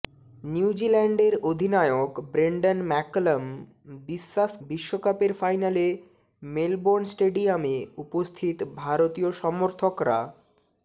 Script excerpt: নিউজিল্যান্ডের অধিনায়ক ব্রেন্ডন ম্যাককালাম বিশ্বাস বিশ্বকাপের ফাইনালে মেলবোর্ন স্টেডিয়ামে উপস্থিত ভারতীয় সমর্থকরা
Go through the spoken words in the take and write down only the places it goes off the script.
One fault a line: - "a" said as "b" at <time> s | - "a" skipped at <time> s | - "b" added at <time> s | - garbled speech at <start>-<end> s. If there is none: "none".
none